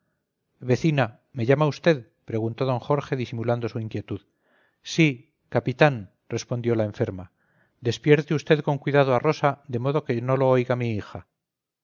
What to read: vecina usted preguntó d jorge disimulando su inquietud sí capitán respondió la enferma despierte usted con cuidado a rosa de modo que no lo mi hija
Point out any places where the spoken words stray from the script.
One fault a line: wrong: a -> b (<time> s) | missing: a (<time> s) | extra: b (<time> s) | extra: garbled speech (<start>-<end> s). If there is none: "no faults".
extra: me llama (1.3 s)
extra: oiga (10.5 s)